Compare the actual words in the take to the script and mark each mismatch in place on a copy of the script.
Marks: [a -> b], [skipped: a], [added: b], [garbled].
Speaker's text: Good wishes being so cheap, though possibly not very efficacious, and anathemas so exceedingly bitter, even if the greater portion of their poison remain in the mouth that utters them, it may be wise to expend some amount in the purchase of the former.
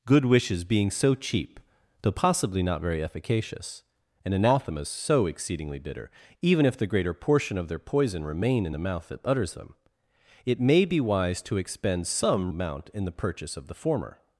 Good wishes being so cheap, though possibly not very efficacious, and anathemas so exceedingly bitter, even if the greater portion of their poison remain in the mouth that utters them, it may be wise to expend some amount in the purchase of the former.